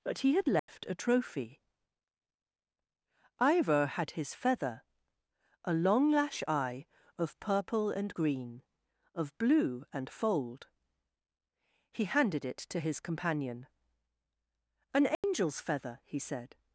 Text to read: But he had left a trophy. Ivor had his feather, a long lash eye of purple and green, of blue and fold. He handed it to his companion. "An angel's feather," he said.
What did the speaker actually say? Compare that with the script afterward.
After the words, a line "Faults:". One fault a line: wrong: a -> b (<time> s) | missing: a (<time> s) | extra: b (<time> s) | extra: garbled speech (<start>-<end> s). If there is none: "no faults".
But he had left a trophy. Ivor had his feather, a long lash eye of purple and green, of blue and fold. He handed it to his companion. "An angel's feather," he said.
Faults:
no faults